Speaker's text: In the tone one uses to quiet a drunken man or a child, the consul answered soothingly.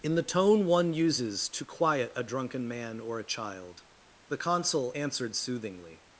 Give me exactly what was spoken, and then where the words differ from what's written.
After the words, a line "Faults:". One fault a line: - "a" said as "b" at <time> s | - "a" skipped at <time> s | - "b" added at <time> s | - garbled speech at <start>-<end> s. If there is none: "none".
In the tone one uses to quiet a drunken man or a child, the consul answered soothingly.
Faults:
none